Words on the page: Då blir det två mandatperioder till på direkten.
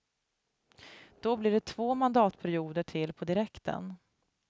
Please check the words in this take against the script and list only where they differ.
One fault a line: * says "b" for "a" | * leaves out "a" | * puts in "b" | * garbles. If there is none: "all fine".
all fine